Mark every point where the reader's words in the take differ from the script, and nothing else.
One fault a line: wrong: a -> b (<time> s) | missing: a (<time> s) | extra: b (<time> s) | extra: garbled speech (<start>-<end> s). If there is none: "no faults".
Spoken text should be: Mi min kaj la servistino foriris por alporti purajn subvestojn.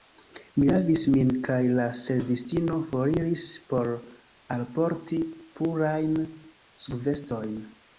extra: lavis (0.7 s)